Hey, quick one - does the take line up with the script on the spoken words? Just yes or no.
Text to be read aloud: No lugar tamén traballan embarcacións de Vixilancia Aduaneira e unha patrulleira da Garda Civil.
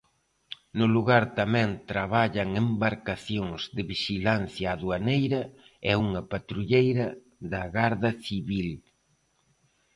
yes